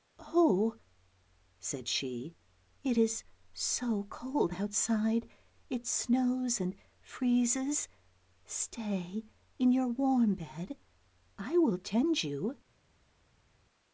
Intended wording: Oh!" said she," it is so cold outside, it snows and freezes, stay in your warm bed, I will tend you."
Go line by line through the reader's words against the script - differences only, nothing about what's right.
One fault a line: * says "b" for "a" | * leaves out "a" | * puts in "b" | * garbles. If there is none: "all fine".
all fine